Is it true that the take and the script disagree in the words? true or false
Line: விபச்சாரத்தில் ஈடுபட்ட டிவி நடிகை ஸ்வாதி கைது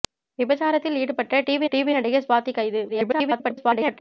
true